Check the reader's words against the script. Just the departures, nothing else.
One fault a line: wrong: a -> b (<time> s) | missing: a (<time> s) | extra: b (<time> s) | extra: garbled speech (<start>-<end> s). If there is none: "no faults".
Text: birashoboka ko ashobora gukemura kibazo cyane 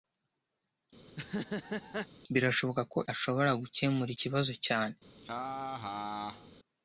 no faults